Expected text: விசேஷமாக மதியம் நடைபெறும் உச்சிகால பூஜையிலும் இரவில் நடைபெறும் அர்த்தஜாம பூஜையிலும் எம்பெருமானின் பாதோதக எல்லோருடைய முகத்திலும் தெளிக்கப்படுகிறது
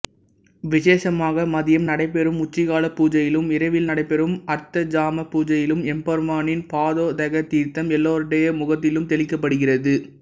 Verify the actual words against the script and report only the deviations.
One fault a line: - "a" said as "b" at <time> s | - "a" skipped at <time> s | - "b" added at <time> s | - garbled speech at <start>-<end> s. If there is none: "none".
- "தீர்த்தம்" added at 7.5 s